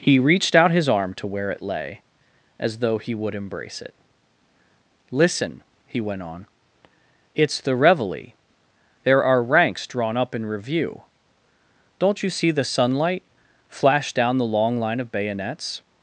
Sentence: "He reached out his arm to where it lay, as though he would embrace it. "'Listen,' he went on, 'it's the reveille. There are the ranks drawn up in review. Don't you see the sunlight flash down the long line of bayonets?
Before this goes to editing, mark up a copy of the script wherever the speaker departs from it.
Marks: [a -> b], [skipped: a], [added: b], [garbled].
"He reached out his arm to where it lay, as though he would embrace it. "'Listen,' he went on, 'it's the reveille. There are [skipped: the] ranks drawn up in review. Don't you see the sunlight flash down the long line of bayonets?